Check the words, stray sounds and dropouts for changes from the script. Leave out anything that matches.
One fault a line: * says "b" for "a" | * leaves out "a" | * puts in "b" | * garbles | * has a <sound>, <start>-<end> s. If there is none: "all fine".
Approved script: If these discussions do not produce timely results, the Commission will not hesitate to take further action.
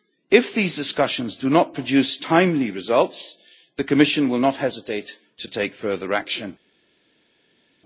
all fine